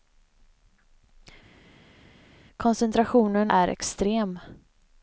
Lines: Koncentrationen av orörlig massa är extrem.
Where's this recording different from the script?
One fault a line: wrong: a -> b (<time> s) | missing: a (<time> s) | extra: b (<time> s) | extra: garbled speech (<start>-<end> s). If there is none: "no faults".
missing: av orörlig massa (3.5 s)